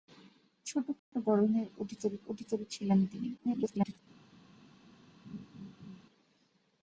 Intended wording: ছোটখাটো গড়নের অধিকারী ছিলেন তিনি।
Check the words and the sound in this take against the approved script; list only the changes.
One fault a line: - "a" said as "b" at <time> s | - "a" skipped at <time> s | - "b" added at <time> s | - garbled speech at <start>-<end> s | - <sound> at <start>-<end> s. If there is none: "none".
- dropout at 1.0-1.1 s
- "অধিকারী" added at 2.3 s
- garbled speech at 3.4-4.0 s
- laugh at 5.3-6.0 s